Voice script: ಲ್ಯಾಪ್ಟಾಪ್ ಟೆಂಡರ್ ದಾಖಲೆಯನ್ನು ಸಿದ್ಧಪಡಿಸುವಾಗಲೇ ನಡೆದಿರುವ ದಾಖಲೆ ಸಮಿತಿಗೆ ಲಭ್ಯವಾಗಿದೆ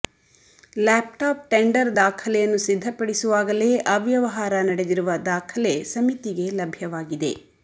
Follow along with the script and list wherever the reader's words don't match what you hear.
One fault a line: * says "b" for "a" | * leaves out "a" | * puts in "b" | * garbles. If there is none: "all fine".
* puts in "ಅವ್ಯವಹಾರ"